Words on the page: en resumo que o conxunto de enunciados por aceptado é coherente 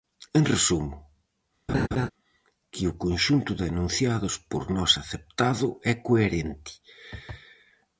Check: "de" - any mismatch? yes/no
no